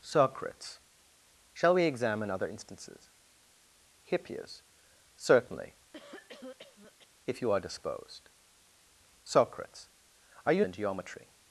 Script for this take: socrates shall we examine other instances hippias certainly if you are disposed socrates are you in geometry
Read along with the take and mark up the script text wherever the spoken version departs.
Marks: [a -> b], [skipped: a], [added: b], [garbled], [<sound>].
socrates shall we examine other instances hippias certainly [cough] if you are disposed socrates are you in geometry